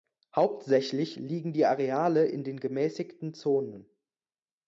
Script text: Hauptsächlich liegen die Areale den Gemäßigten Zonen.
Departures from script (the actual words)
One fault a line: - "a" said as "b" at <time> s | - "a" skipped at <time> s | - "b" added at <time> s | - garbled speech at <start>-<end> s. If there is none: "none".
- "in" added at 2.2 s